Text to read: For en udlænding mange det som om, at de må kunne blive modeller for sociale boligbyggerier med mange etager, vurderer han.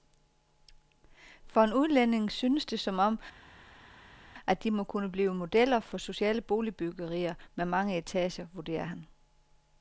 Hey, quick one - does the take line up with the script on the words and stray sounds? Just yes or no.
no